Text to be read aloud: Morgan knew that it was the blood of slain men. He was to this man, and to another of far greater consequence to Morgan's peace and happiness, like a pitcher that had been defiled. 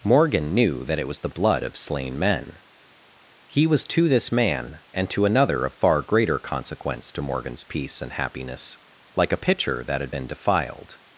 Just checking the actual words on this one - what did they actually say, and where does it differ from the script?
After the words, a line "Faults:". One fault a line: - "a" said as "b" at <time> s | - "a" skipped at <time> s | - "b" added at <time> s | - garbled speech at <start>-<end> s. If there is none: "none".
Morgan knew that it was the blood of slain men. He was to this man, and to another of far greater consequence to Morgan's peace and happiness, like a pitcher that had been defiled.
Faults:
none